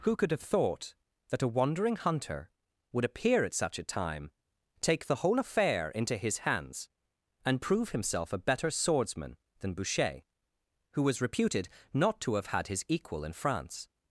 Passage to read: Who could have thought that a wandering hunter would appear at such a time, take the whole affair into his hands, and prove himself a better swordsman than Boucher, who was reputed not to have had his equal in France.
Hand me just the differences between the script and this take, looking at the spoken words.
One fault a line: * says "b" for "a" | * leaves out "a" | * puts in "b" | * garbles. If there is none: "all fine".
all fine